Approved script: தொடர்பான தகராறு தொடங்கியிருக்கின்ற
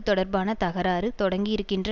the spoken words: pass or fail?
pass